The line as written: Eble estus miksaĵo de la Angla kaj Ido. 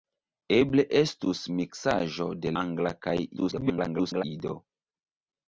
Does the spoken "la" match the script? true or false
false